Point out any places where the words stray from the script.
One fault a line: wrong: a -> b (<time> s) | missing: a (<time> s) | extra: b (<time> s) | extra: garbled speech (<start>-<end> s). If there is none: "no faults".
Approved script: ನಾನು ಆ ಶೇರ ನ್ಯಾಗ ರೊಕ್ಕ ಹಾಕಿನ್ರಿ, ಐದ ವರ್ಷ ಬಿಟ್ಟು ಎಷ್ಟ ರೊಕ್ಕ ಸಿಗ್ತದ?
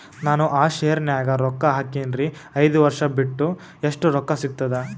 no faults